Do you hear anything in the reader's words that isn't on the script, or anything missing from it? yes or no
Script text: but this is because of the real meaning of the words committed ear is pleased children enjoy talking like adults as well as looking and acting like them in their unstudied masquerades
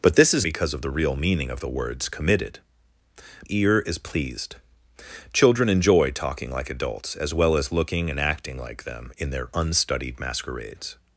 no